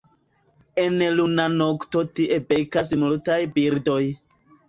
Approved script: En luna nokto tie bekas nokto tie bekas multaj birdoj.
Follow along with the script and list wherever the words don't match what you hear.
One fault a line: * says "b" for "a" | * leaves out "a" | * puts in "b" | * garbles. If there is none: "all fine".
* leaves out "nokto tie bekas"